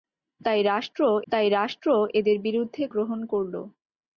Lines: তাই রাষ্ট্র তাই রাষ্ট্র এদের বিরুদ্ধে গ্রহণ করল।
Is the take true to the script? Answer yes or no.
yes